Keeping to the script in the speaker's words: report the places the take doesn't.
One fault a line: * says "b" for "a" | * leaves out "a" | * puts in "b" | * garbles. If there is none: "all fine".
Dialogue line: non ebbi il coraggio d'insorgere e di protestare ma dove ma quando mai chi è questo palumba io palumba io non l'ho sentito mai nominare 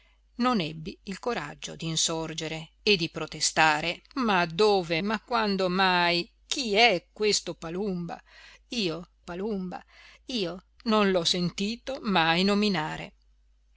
all fine